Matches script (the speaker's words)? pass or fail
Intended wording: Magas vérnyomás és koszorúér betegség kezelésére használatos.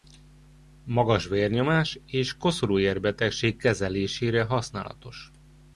pass